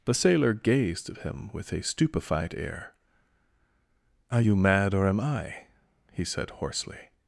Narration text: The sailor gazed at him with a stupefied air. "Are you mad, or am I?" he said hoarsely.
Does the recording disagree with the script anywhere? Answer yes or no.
no